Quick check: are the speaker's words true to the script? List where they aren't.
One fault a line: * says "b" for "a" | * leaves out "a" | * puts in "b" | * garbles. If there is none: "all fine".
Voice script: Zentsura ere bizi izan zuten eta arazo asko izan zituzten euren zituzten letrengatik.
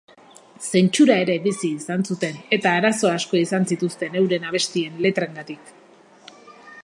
* says "abestien" for "zituzten"